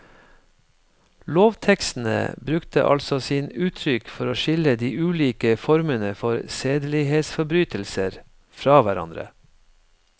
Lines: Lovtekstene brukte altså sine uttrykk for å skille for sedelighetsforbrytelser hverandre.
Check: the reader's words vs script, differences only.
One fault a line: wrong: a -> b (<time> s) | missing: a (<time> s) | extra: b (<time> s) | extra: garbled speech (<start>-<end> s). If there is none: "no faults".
extra: de ulike formene (4.8 s)
extra: fra (8.6 s)